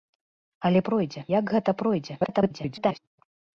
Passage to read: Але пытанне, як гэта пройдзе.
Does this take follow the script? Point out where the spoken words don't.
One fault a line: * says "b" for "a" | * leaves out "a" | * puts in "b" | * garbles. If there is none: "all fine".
* says "пройдзе" for "пытанне"
* garbles